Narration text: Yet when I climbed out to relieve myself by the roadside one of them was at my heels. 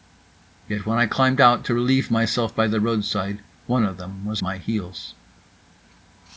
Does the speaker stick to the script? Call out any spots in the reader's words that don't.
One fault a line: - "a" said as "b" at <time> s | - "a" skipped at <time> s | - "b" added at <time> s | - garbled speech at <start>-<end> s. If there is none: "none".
- "at" skipped at 4.4 s